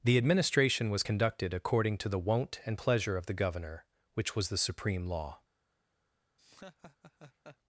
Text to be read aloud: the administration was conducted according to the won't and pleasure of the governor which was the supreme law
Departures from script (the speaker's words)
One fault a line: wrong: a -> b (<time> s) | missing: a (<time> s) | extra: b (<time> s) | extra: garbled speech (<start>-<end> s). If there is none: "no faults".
no faults